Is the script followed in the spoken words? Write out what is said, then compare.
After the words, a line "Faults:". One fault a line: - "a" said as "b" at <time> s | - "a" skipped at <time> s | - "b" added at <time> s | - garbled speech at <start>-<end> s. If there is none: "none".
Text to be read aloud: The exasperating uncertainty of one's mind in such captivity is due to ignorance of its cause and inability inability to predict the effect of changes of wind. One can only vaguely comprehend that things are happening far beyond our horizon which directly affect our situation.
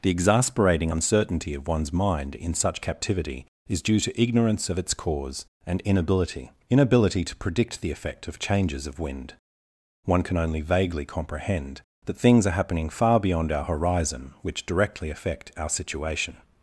The exasperating uncertainty of one's mind in such captivity is due to ignorance of its cause and inability inability to predict the effect of changes of wind. One can only vaguely comprehend that things are happening far beyond our horizon which directly affect our situation.
Faults:
none